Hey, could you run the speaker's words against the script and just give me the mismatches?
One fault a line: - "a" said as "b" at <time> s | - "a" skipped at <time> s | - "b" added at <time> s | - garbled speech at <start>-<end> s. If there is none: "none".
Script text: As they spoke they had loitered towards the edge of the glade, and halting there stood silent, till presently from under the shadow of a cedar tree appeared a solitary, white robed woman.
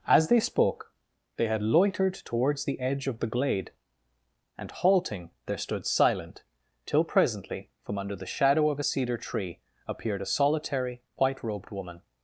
none